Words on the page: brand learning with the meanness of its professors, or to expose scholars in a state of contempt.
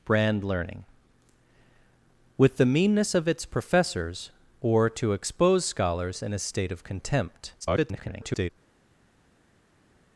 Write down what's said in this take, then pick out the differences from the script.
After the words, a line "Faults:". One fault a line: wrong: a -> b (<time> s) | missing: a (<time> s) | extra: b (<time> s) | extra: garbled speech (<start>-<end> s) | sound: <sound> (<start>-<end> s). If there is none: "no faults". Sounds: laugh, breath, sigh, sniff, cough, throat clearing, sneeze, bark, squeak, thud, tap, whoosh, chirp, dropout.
brand learning with the meanness of its professors, or to expose scholars in a state of contempt. [garbled]
Faults:
extra: garbled speech (7.6-8.5 s)